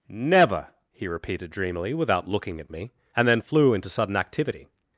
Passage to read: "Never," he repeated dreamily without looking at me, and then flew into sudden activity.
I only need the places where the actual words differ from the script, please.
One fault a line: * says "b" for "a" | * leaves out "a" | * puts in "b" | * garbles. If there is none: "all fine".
all fine